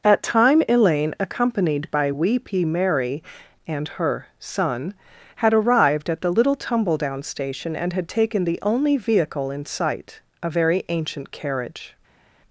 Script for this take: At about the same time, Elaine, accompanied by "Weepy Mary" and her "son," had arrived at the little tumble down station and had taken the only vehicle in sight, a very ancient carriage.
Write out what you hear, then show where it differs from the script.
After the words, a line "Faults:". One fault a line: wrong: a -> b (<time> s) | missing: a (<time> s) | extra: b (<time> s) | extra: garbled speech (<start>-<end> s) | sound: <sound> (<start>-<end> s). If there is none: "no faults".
At time, Elaine, accompanied by "Weepy Mary" and her "son," had arrived at the little tumble down station and had taken the only vehicle in sight, a very ancient carriage.
Faults:
missing: about the same (0.2 s)